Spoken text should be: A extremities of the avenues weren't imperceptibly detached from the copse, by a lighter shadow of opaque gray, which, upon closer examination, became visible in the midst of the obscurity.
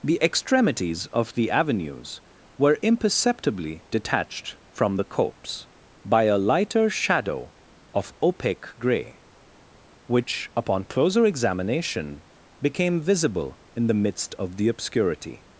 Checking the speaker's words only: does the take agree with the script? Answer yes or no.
no